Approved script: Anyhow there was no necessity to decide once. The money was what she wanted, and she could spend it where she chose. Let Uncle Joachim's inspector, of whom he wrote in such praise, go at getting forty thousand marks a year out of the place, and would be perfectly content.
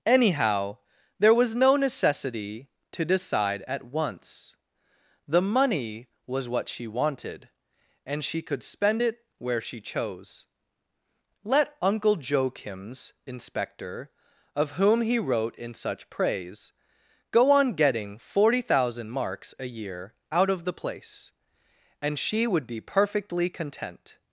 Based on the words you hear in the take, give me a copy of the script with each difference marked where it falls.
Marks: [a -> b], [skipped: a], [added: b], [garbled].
Anyhow there was no necessity to decide [added: at] once. The money was what she wanted, and she could spend it where she chose. Let Uncle Joachim's inspector, of whom he wrote in such praise, go [at -> on] getting forty thousand marks a year out of the place, and [added: she] would be perfectly content.